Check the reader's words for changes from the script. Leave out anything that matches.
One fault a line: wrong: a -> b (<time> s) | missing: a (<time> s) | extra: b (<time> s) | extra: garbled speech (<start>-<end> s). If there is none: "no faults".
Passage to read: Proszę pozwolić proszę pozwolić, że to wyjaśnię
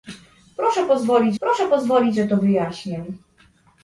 no faults